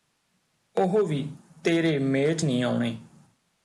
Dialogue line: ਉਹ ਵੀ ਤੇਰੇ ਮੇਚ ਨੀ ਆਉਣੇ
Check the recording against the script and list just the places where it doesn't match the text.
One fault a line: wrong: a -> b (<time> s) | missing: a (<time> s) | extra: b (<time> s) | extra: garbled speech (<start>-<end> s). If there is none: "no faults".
no faults